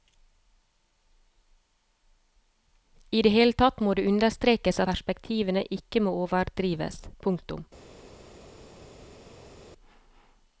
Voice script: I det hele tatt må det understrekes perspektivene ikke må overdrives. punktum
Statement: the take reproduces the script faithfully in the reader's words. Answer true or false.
true